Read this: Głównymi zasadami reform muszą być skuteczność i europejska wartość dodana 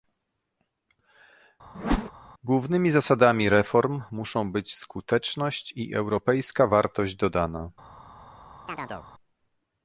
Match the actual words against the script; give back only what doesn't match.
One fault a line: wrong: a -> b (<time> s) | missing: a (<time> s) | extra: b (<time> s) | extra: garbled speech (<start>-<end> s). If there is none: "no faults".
no faults